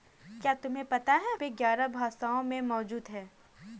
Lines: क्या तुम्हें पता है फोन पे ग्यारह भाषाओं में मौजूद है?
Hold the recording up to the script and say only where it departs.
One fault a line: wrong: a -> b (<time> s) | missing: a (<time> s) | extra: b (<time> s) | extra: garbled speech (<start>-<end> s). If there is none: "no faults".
missing: फोन (1.4 s)